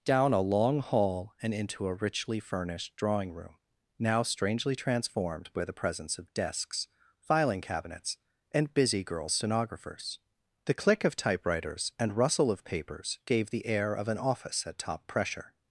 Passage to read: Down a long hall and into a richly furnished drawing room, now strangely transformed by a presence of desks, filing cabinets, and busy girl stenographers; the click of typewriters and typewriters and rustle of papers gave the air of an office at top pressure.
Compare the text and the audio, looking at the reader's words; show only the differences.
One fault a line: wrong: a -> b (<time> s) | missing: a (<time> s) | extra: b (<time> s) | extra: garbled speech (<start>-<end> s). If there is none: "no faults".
wrong: a -> the (5.6 s)
missing: typewriters and (12.2 s)